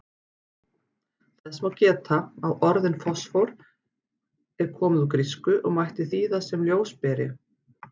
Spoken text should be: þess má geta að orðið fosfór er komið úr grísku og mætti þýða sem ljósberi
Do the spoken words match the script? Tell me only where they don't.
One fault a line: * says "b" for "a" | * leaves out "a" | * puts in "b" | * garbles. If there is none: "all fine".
all fine